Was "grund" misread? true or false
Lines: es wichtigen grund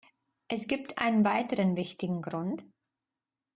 false